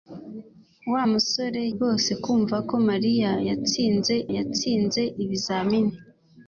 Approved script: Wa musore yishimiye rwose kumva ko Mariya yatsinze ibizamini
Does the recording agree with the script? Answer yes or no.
no